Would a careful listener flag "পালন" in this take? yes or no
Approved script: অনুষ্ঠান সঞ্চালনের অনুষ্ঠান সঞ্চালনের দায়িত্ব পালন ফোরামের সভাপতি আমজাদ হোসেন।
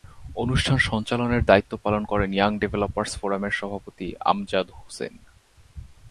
yes